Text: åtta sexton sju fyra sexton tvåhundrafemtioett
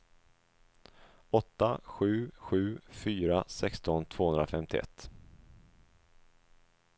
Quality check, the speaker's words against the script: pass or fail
fail